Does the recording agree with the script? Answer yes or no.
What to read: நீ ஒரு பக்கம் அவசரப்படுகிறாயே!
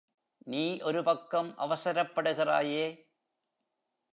yes